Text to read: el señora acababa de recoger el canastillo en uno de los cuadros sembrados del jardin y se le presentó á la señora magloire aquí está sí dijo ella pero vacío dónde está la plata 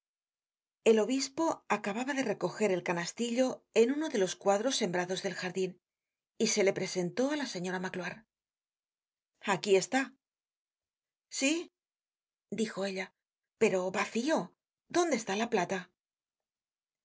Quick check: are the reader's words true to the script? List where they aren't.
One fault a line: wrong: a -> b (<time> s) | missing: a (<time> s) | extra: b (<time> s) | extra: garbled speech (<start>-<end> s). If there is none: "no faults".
wrong: señora -> obispo (1.1 s)